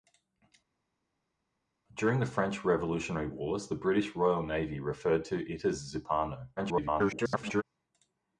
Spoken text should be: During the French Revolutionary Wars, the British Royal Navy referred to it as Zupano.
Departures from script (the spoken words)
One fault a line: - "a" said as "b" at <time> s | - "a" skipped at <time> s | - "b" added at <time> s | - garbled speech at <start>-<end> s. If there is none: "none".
- garbled speech at 6.6-7.6 s